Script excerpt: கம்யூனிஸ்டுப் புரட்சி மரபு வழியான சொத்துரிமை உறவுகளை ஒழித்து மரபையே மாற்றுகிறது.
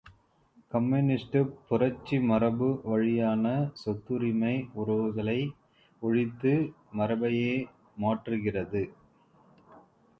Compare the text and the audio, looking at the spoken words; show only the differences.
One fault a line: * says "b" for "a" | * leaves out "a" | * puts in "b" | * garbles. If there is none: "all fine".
all fine